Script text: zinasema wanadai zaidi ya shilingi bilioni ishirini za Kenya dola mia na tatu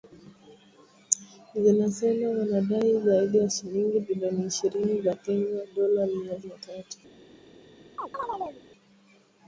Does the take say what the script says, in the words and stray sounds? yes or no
no